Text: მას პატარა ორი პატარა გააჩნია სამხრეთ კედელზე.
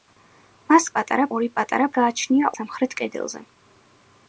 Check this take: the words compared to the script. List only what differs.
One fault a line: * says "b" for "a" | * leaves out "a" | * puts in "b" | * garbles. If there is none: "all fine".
all fine